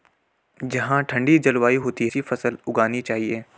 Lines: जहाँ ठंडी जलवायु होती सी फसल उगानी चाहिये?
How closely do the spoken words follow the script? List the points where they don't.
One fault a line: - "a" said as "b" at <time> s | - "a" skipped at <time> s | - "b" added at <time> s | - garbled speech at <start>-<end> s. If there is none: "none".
none